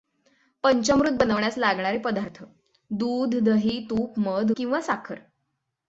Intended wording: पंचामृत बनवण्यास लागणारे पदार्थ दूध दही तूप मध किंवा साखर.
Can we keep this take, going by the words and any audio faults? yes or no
yes